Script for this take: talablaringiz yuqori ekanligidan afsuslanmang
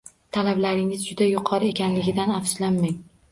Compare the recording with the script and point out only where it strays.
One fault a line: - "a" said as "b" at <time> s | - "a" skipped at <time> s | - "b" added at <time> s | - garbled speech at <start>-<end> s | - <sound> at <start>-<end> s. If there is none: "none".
- "juda" added at 1.1 s